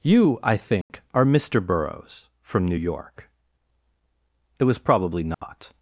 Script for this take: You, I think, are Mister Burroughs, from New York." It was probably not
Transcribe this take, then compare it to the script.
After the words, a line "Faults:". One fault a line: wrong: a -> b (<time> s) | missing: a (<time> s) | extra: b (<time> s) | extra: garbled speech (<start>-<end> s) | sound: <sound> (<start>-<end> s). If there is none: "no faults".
You, I think, are Mister Burroughs, from New York." It was probably not
Faults:
sound: dropout (0.8-0.9 s)
sound: dropout (5.3-5.4 s)